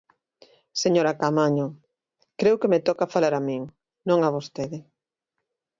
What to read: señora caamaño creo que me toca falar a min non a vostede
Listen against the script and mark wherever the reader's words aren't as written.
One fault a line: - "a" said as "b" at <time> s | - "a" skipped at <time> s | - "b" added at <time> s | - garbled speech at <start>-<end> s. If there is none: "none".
none